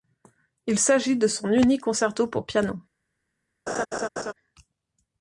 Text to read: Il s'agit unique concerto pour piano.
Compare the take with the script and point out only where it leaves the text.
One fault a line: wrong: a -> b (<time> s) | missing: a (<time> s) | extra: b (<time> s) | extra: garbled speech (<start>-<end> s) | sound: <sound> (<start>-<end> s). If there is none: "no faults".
extra: de son (1.2 s)
sound: laugh (3.7-4.3 s)